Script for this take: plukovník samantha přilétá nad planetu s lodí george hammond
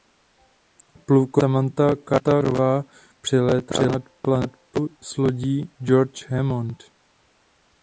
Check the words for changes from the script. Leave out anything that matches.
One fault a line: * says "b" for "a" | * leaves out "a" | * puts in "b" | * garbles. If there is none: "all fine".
* puts in "carterová"